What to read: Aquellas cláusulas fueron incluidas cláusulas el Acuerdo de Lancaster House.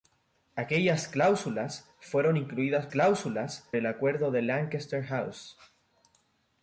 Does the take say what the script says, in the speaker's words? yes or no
yes